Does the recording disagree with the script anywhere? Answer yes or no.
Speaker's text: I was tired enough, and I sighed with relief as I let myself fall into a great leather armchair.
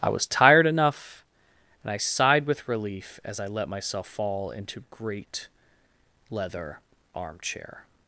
yes